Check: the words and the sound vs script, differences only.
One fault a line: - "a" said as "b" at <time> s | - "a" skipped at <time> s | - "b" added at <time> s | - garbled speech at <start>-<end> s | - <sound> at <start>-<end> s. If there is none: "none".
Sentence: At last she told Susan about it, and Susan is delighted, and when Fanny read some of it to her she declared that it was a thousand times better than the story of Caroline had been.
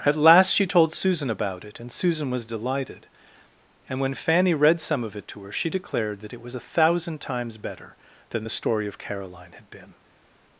- "is" said as "was" at 2.3 s